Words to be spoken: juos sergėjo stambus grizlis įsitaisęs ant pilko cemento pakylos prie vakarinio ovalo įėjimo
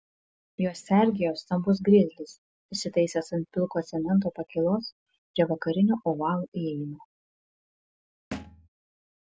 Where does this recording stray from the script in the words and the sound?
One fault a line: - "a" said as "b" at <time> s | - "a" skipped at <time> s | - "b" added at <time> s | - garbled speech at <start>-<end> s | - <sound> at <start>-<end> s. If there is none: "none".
- thud at 8.3-8.7 s